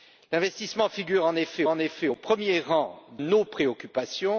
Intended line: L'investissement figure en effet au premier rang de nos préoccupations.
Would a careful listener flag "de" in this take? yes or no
yes